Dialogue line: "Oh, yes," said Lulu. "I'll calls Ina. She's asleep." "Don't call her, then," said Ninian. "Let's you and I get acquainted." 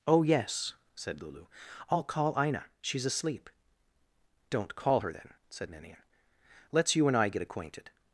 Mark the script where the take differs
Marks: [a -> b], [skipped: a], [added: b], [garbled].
"Oh, yes," said Lulu. "I'll [calls -> call] Ina. She's asleep." "Don't call her, then," said Ninian. "Let's you and I get acquainted."